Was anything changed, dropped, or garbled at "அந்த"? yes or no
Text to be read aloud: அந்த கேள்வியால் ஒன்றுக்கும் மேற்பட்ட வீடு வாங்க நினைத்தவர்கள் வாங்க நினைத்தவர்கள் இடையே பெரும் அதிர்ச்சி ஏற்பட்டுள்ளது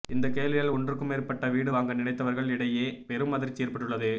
yes